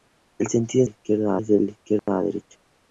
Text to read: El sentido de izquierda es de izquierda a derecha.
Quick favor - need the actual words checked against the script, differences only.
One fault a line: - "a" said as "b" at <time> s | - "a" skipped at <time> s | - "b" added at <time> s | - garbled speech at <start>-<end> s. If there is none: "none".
none